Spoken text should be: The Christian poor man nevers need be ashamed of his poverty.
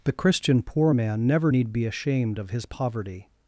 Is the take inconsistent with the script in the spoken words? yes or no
yes